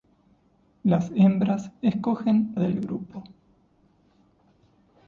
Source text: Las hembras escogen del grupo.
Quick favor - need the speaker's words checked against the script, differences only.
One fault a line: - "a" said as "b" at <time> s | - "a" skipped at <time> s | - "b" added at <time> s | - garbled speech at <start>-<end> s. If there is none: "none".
none